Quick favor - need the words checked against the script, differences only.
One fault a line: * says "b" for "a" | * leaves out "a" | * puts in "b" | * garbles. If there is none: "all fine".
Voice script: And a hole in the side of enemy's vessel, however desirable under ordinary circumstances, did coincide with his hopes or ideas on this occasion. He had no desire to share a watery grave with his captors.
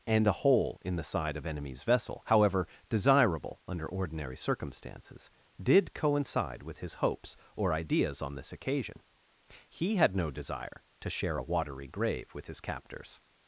all fine